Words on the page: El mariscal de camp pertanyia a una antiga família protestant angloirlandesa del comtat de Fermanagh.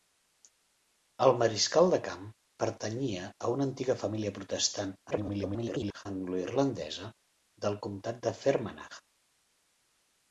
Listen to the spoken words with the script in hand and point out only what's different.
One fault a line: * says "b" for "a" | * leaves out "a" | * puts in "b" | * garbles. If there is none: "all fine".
* garbles